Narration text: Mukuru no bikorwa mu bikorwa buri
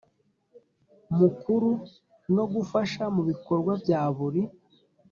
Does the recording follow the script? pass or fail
fail